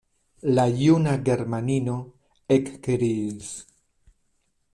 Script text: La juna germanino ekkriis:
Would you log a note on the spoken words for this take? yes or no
no